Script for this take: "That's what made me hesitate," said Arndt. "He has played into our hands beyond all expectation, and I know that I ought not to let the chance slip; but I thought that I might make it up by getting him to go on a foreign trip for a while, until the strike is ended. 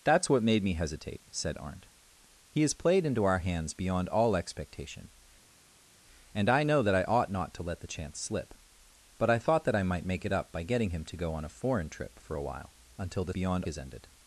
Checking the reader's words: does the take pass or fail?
fail